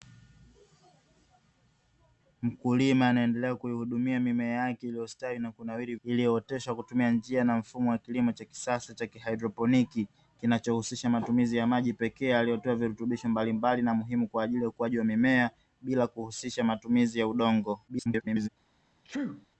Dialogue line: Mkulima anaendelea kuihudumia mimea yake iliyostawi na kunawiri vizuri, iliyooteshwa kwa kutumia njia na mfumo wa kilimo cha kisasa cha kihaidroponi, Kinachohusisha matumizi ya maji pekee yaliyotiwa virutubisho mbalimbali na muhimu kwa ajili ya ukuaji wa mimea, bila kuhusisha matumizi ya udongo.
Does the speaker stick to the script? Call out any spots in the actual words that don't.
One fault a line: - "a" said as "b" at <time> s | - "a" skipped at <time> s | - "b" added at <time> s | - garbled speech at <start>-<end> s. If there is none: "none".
- "vizuri" skipped at 6.0 s
- garbled speech at 17.9-18.5 s